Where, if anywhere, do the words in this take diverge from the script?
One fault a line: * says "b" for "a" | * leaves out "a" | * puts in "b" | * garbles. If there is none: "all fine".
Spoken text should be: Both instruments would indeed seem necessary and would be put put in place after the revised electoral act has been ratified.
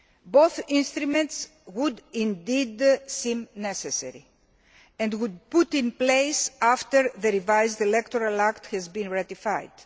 * leaves out "put"